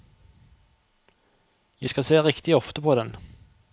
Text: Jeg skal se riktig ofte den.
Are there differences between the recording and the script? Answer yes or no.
yes